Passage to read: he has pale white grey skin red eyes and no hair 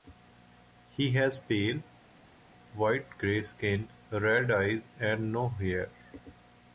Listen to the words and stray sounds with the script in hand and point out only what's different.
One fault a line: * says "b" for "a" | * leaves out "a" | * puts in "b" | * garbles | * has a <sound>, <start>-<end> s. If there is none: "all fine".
all fine